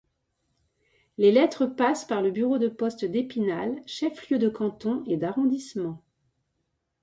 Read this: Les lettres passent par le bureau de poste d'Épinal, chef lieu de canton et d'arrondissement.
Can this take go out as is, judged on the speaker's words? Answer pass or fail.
pass